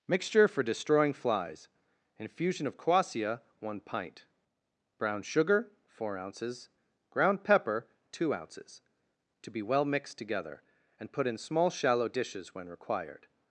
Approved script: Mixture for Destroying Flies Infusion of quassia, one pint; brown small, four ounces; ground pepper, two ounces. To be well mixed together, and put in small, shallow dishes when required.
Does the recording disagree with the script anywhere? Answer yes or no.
yes